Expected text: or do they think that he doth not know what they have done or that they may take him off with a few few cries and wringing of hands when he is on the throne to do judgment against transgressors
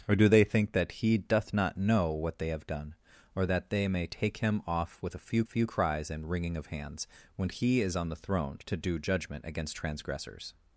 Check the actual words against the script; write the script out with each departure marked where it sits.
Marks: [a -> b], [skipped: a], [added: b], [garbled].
or do they think that he doth not know what they have done or that they may take him off with a few few cries and wringing of hands when he is on the throne to do judgment against transgressors